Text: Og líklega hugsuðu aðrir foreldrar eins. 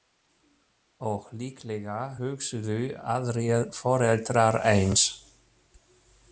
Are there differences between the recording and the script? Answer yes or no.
no